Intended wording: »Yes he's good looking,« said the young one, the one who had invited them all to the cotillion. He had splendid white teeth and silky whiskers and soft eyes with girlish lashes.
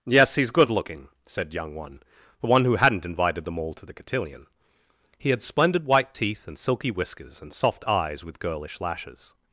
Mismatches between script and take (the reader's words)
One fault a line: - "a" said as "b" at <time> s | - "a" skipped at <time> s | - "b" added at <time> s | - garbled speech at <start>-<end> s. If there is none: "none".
- "the" skipped at 1.5 s
- "had" said as "hadn't" at 2.8 s